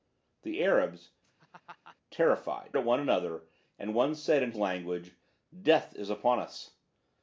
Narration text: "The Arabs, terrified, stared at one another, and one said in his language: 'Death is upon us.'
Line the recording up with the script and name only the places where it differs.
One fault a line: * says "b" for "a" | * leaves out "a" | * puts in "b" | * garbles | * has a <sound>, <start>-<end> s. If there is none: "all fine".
* has a laugh, 1.2-2.0 s
* leaves out "stared"
* leaves out "his"